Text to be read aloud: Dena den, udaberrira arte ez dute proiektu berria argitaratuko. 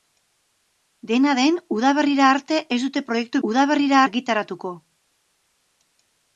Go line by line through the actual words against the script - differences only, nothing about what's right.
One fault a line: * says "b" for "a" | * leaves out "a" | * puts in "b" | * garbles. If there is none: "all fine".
* says "udaberrira" for "berria"